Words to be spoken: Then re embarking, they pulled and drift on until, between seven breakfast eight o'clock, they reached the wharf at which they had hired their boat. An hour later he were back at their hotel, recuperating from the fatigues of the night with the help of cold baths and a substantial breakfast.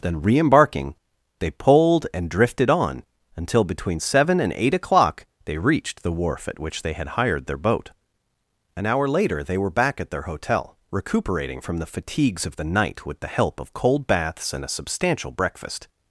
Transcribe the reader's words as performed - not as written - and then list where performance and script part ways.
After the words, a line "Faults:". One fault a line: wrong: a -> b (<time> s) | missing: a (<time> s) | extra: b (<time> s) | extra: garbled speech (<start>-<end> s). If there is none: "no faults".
Then re embarking, they pulled and drifted on until, between seven and eight o'clock, they reached the wharf at which they had hired their boat. An hour later they were back at their hotel, recuperating from the fatigues of the night with the help of cold baths and a substantial breakfast.
Faults:
wrong: drift -> drifted (2.3 s)
wrong: breakfast -> and (4.4 s)
wrong: he -> they (9.4 s)